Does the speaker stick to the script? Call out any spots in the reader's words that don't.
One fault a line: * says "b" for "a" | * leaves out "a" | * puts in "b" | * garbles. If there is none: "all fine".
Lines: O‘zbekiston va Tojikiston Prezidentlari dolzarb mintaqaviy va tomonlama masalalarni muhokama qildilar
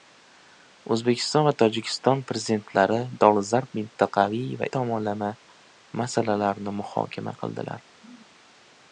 all fine